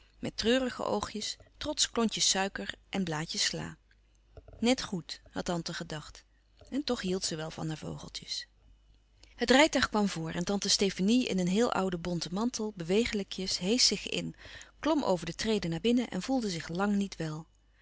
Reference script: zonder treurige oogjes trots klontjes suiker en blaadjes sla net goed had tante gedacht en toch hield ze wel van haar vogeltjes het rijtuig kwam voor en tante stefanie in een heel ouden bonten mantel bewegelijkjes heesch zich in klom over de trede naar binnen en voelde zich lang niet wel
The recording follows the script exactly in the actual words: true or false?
false